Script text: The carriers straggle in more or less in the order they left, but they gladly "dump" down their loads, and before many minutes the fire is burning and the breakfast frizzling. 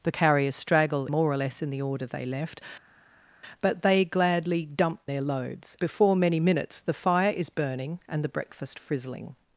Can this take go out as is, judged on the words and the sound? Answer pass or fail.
fail